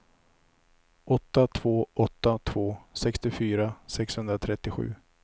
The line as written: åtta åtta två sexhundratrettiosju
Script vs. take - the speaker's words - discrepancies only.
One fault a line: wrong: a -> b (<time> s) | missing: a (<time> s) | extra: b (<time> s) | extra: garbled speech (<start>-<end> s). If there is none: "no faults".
extra: två (1.5 s)
extra: sextiofyra (2.9 s)